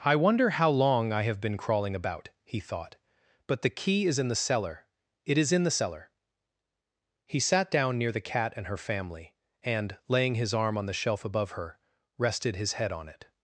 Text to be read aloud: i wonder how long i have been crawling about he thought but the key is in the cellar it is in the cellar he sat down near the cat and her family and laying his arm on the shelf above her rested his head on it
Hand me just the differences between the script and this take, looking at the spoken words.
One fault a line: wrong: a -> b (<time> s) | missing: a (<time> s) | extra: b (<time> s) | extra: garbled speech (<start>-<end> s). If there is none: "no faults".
no faults